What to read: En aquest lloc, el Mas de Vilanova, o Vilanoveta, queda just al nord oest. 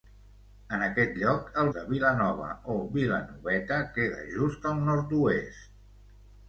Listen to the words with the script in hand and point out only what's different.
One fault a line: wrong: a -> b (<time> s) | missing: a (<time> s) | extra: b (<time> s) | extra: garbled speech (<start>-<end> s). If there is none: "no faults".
missing: Mas (1.7 s)